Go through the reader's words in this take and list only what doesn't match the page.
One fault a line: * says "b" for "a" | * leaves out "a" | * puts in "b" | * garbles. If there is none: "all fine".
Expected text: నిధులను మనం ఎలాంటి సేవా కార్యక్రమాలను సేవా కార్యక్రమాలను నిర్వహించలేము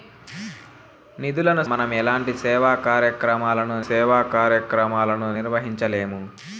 all fine